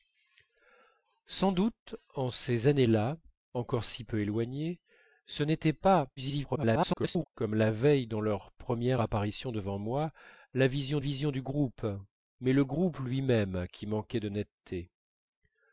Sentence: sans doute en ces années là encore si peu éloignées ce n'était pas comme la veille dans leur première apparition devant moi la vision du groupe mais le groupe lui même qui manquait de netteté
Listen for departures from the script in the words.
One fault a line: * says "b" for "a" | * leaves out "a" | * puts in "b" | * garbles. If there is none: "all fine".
* garbles
* puts in "vision"